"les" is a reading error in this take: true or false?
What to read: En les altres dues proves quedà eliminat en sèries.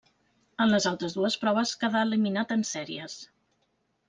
false